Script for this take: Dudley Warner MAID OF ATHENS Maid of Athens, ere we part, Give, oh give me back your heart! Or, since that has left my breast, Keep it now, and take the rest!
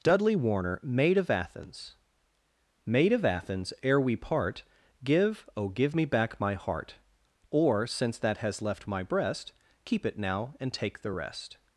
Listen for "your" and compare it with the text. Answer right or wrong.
wrong